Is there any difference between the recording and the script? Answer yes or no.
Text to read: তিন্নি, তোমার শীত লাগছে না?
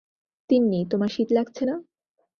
no